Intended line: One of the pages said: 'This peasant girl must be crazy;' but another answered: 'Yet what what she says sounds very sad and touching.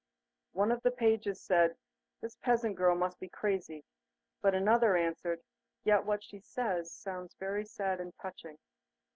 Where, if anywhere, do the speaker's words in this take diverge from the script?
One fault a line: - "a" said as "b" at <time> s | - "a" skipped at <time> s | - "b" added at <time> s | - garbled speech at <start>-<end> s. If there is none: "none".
- "what" skipped at 6.2 s